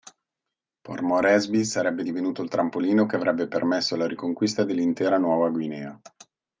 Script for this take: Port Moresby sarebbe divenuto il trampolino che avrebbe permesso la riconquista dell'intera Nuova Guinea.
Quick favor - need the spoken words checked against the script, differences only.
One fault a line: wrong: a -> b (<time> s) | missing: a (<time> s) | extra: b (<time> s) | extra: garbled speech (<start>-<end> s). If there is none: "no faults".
no faults